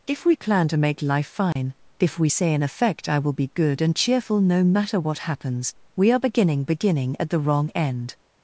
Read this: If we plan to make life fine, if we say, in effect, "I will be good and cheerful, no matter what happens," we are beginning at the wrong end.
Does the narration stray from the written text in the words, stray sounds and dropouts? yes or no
yes